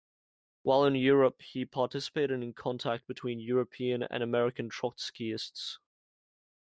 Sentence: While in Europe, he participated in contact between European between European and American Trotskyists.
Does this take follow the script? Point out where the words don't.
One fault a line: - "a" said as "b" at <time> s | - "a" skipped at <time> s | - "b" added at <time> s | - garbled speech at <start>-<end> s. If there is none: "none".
- "between European" skipped at 4.0 s